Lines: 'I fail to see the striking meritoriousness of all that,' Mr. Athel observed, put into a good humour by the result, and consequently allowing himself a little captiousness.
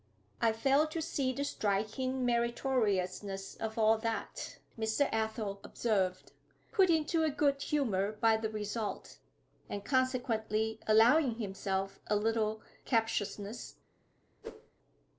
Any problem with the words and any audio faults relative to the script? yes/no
yes